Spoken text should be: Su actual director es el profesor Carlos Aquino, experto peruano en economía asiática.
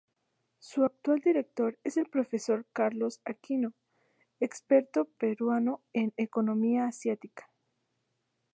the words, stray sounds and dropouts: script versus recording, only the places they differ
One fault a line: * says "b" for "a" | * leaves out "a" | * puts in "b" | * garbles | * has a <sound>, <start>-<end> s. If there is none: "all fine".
all fine